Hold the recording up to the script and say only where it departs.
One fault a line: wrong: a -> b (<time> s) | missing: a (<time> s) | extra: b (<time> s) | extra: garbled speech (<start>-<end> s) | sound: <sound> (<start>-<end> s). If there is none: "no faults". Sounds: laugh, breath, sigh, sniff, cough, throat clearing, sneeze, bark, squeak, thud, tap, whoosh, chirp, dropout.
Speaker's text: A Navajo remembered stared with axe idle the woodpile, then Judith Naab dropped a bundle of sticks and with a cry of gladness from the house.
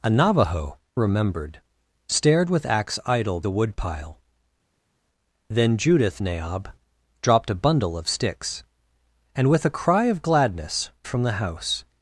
no faults